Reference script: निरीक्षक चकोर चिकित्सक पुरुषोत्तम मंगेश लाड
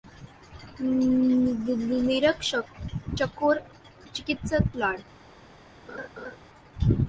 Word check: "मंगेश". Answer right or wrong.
wrong